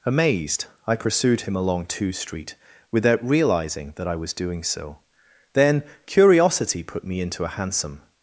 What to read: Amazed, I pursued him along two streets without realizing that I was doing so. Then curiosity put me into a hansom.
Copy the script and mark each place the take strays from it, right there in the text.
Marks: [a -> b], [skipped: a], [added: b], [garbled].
Amazed, I pursued him along two [streets -> street] without realizing that I was doing so. Then curiosity put me into a hansom.